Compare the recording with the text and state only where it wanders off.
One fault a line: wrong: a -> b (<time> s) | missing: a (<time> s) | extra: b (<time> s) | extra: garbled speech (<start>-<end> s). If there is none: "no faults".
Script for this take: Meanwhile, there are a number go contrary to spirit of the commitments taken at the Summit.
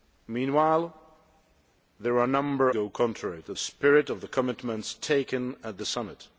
no faults